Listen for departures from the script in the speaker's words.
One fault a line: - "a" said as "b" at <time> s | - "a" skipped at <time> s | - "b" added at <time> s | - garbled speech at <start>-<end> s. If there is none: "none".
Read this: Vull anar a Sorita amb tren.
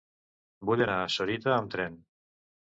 none